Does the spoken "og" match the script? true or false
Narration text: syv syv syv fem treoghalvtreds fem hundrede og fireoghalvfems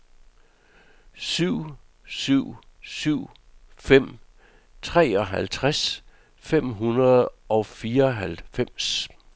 true